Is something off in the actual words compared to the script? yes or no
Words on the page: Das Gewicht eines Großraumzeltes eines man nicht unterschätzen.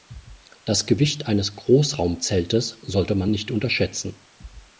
yes